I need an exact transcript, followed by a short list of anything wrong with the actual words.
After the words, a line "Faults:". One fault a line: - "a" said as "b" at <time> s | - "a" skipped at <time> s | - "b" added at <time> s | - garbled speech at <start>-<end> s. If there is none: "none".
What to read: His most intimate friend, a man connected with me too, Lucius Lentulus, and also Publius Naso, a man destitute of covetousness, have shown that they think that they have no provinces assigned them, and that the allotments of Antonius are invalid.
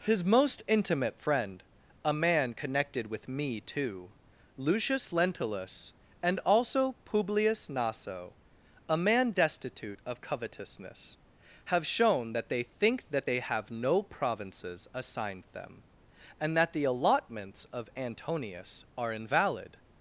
His most intimate friend, a man connected with me too, Lucius Lentulus, and also Publius Naso, a man destitute of covetousness, have shown that they think that they have no provinces assigned them, and that the allotments of Antonius are invalid.
Faults:
none